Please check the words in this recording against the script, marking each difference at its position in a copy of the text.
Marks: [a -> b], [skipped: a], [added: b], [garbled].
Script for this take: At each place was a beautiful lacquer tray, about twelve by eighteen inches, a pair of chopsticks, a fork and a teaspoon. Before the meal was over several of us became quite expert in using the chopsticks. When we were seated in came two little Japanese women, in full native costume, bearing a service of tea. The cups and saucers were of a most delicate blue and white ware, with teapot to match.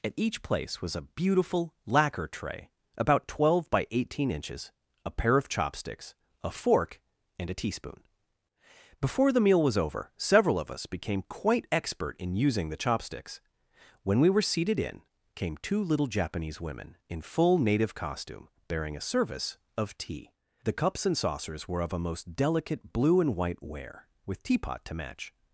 At each place was a beautiful lacquer tray, about twelve by eighteen inches, a pair of chopsticks, a fork and a teaspoon. Before the meal was over several of us became quite expert in using the chopsticks. When we were seated in came two little Japanese women, in full native costume, bearing a service of tea. The cups and saucers were of a most delicate blue and white ware, with teapot to match.